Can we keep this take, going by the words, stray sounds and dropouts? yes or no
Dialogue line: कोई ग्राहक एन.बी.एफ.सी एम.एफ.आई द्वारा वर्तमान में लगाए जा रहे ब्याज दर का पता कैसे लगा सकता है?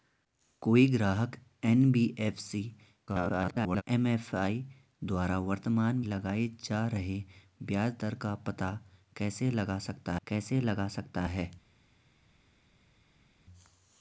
no